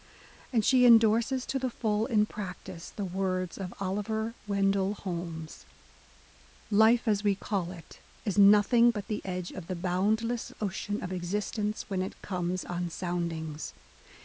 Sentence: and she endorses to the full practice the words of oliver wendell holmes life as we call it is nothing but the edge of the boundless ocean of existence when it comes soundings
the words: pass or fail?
fail